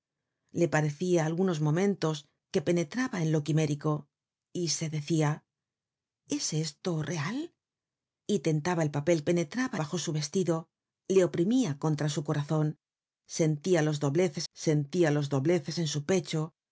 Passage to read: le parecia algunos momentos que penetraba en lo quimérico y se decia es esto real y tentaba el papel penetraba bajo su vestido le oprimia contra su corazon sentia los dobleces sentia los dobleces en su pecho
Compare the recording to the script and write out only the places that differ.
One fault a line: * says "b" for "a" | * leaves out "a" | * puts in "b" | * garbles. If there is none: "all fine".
all fine